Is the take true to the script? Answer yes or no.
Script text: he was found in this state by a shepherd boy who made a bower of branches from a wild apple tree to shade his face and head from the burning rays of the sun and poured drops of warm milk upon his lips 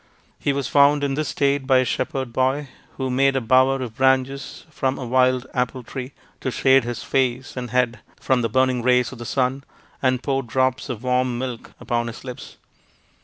yes